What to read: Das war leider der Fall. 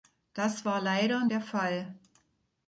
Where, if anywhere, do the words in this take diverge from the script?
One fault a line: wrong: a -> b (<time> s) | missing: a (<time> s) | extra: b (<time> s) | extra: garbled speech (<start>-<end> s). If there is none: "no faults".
no faults